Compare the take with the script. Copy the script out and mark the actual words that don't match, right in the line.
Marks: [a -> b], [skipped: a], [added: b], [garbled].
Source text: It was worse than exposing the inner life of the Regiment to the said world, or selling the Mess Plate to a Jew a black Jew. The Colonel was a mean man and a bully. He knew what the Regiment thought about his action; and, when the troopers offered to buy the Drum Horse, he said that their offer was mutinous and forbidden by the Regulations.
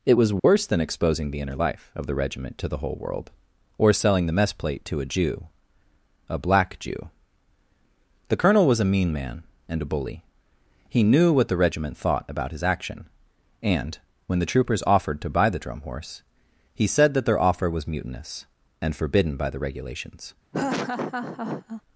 It was worse than exposing the inner life of the Regiment to the [said -> whole] world, or selling the Mess Plate to a Jew a black Jew. The Colonel was a mean man and a bully. He knew what the Regiment thought about his action; and, when the troopers offered to buy the Drum Horse, he said that their offer was mutinous and forbidden by the Regulations.